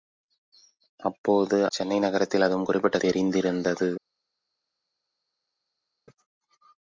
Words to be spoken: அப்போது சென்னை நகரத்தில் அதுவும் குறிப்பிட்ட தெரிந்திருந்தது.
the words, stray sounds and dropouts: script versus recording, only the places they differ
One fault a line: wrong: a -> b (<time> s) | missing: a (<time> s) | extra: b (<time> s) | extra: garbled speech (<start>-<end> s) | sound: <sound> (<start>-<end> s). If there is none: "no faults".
no faults